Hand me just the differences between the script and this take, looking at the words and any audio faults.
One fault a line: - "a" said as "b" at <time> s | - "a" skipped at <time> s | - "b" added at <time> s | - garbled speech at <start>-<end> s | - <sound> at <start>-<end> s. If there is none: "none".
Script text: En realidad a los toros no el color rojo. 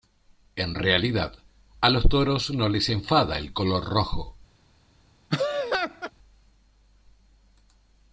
- "les enfada" added at 2.7 s
- laugh at 5.3-6.1 s